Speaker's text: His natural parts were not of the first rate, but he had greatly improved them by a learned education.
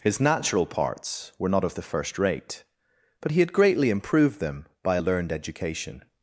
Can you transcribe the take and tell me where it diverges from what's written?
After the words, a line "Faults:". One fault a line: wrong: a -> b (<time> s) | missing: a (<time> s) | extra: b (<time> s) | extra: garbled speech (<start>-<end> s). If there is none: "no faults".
His natural parts were not of the first rate, but he had greatly improved them by a learned education.
Faults:
no faults